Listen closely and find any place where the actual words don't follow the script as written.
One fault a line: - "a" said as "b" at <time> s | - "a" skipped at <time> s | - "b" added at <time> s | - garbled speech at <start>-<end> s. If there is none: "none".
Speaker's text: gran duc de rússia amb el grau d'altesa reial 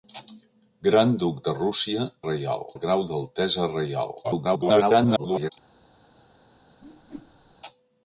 - "amb" said as "reial" at 2.3 s
- garbled speech at 4.2-5.5 s